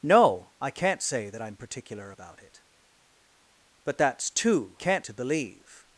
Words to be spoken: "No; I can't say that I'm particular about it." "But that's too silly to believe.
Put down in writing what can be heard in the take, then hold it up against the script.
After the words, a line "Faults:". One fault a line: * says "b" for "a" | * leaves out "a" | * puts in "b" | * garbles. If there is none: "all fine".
"No; I can't say that I'm particular about it." "But that's too can't to believe.
Faults:
* says "can't" for "silly"